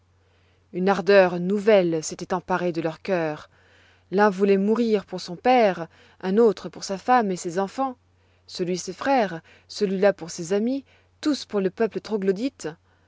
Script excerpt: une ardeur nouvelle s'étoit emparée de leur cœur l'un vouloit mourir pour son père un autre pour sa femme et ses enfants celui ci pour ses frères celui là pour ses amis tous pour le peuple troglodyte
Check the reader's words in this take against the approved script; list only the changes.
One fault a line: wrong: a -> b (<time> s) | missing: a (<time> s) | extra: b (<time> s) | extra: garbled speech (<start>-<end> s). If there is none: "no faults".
missing: ci pour (8.8 s)